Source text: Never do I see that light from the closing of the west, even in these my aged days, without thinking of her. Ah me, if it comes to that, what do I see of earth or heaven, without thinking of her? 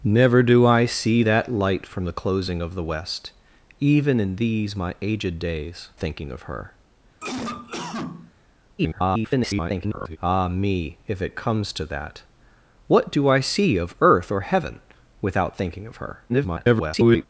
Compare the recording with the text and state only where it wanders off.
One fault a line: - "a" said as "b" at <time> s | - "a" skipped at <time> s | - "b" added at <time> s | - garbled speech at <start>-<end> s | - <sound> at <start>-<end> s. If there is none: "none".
- "without" skipped at 5.9 s
- cough at 7.2-8.3 s
- garbled speech at 8.8-10.2 s
- garbled speech at 16.3-17.3 s